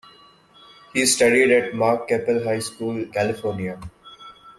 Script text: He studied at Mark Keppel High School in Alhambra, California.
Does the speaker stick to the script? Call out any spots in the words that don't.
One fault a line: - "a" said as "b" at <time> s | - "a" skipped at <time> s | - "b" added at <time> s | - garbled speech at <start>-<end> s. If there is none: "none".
- "in Alhambra" skipped at 3.0 s